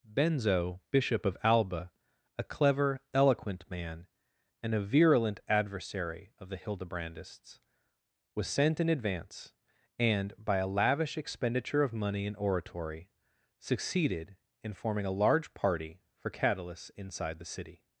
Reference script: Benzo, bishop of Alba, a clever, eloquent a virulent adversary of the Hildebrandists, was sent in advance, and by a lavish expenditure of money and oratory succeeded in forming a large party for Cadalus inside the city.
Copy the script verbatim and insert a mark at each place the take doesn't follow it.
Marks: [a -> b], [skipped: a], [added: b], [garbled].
Benzo, bishop of Alba, a clever, eloquent [added: man and] a virulent adversary of the Hildebrandists, was sent in advance, and by a lavish expenditure of money and oratory succeeded in forming a large party for Cadalus inside the city.